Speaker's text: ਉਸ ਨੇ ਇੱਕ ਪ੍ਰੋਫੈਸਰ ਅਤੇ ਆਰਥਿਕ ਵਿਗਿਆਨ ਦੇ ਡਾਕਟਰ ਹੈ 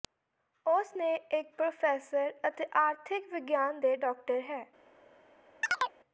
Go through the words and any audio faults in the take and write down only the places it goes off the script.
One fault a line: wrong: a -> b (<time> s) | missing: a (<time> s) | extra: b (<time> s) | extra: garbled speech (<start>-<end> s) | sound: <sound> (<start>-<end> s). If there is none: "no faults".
sound: chirp (5.6-6.0 s)